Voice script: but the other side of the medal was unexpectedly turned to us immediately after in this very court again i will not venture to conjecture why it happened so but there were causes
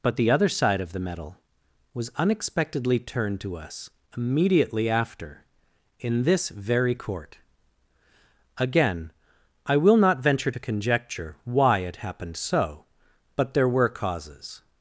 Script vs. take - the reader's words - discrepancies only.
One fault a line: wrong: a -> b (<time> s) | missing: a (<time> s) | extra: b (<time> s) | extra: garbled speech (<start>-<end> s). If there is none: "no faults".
no faults